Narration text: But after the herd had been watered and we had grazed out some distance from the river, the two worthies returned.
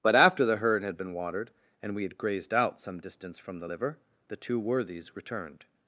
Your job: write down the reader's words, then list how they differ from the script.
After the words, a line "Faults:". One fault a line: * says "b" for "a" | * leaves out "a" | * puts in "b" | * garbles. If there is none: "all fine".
But after the herd had been watered and we had grazed out some distance from the liver, the two worthies returned.
Faults:
* says "liver" for "river"